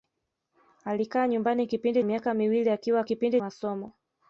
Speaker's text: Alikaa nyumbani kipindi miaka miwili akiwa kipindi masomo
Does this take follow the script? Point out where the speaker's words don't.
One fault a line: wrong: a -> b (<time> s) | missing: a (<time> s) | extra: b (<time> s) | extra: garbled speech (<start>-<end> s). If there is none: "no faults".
no faults